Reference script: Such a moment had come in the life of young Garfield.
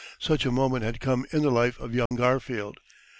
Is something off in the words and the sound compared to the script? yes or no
yes